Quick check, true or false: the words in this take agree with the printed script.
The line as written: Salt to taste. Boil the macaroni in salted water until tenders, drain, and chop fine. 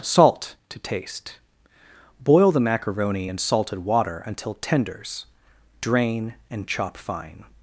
true